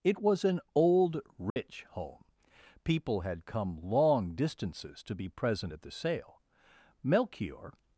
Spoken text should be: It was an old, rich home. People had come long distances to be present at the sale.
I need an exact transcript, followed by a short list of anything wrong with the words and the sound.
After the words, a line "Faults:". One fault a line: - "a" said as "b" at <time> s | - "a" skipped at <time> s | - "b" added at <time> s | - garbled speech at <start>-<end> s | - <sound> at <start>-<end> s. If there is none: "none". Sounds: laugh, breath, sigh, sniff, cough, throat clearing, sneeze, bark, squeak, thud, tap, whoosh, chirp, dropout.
It was an old, rich home. People had come long distances to be present at the sale. Melchior
Faults:
- dropout at 1.5-1.6 s
- "Melchior" added at 7.0 s